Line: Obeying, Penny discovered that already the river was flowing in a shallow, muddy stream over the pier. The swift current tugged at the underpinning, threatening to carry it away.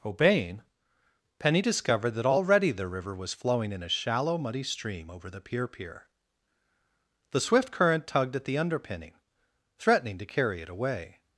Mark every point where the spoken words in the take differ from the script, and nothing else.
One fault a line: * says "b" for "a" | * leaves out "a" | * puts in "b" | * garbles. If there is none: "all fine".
* puts in "pier"